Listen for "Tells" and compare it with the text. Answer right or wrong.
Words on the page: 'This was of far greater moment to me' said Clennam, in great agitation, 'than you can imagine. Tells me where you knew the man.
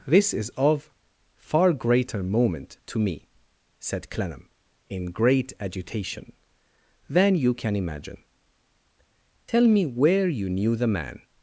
wrong